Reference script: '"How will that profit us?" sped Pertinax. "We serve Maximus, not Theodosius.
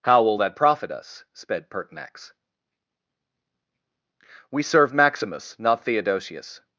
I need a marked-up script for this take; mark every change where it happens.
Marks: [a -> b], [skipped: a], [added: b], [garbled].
'"How will that profit us?" sped Pertinax. "We serve Maximus, not Theodosius.